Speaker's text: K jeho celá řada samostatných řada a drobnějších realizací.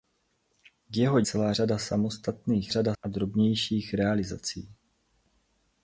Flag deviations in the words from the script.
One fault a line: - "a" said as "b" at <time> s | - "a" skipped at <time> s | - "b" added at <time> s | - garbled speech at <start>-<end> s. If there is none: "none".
none